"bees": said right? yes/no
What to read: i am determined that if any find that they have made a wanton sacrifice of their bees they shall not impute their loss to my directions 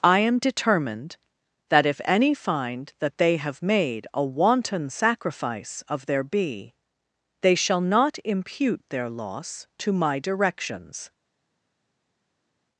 no